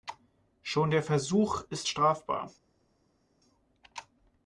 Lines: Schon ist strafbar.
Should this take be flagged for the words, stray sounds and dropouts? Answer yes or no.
yes